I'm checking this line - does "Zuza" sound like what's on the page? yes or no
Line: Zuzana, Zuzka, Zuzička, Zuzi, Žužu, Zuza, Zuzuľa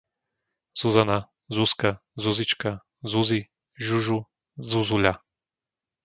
no